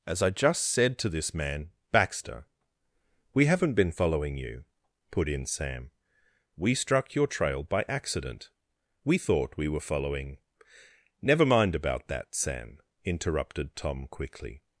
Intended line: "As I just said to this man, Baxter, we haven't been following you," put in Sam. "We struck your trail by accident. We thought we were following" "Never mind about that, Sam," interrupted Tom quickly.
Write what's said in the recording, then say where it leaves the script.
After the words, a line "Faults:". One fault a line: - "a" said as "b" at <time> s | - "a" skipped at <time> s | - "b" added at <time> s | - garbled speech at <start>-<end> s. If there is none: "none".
"As I just said to this man, Baxter, we haven't been following you," put in Sam. "We struck your trail by accident. We thought we were following" "Never mind about that, Sam," interrupted Tom quickly.
Faults:
none